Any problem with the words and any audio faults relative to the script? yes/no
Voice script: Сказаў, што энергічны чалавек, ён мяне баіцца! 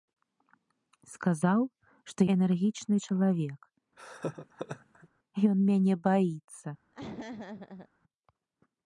yes